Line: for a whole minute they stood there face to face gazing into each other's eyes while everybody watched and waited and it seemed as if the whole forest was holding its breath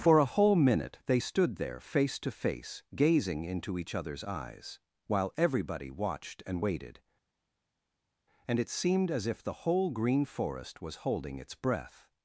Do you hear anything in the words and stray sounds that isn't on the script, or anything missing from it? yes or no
yes